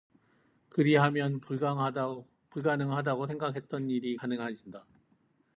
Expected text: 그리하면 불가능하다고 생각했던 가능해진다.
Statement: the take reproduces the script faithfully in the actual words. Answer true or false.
false